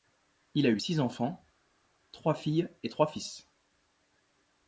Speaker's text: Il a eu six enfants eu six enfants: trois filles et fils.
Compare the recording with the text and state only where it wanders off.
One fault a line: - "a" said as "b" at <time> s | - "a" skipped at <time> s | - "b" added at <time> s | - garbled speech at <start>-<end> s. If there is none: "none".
- "eu six enfants" skipped at 1.4 s
- "trois" added at 2.9 s